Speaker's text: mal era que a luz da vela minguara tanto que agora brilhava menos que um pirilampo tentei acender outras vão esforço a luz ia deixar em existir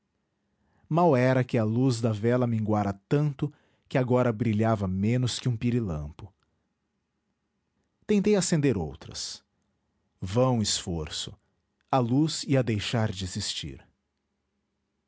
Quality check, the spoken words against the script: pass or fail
fail